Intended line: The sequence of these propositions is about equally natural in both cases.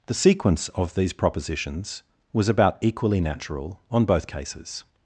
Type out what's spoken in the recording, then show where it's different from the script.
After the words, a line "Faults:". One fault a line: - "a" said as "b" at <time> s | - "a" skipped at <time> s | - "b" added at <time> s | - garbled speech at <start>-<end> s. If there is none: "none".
The sequence of these propositions was about equally natural on both cases.
Faults:
- "is" said as "was" at 2.3 s
- "in" said as "on" at 3.9 s